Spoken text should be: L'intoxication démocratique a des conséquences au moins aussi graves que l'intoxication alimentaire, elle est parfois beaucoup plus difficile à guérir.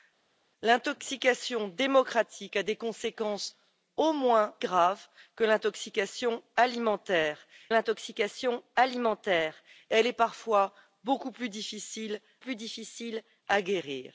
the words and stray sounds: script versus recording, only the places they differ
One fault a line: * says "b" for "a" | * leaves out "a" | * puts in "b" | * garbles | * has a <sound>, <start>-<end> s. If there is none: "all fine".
* leaves out "aussi"
* puts in "l'intoxication alimentaire"
* puts in "plus difficile"